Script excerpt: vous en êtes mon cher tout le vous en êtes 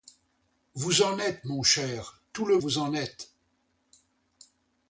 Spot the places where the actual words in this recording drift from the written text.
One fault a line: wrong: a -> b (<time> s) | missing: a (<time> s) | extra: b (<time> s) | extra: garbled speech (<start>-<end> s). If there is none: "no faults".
no faults